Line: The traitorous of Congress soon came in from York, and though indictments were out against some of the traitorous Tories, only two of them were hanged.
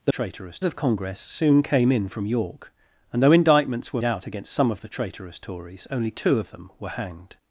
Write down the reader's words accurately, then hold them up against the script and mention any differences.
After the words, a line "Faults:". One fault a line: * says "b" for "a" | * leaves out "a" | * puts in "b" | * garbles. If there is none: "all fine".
The traitorous of Congress soon came in from York, and though indictments were out against some of the traitorous Tories, only two of them were hanged.
Faults:
all fine